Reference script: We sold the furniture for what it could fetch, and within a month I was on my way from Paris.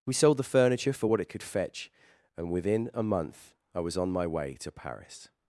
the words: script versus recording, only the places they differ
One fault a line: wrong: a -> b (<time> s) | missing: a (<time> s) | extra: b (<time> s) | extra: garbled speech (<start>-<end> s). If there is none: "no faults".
wrong: from -> to (4.5 s)